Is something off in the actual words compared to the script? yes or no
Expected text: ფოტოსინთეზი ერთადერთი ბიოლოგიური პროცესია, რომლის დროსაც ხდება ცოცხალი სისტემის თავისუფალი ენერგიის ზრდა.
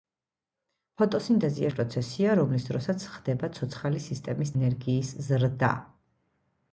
yes